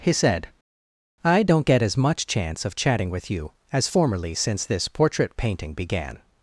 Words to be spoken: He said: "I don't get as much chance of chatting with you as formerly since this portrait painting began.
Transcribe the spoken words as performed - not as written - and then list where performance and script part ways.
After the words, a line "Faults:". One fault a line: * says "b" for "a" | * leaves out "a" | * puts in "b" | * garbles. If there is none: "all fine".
He said: "I don't get as much chance of chatting with you as formerly since this portrait painting began.
Faults:
all fine